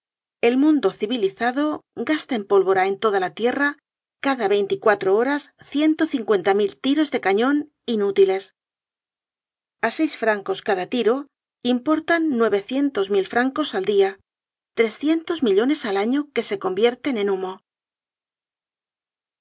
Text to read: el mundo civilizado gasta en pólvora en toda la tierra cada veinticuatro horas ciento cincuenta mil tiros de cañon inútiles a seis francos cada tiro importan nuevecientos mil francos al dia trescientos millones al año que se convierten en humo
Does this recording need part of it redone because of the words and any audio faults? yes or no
no